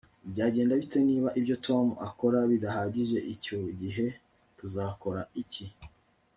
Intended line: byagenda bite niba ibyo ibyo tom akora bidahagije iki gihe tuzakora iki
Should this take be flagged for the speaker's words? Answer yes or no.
yes